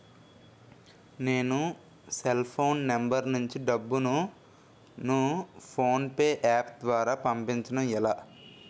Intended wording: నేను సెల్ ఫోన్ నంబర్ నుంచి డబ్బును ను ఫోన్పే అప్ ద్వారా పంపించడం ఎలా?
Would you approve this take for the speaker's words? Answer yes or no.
yes